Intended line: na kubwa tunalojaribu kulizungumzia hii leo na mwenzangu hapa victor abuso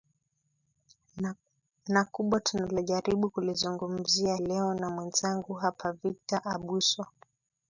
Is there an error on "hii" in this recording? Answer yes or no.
yes